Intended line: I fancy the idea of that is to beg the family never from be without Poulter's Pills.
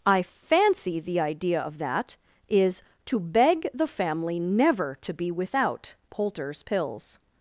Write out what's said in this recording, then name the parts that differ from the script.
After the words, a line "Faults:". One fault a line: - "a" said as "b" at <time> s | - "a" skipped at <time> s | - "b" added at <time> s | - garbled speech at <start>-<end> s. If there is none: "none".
I fancy the idea of that is to beg the family never to be without Poulter's Pills.
Faults:
- "from" said as "to" at 5.0 s